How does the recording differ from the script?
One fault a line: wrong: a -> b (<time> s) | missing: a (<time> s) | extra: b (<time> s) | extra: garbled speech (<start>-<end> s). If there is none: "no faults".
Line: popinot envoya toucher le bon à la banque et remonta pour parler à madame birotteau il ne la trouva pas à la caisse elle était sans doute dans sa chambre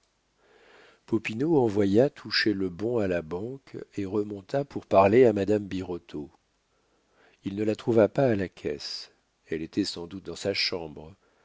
no faults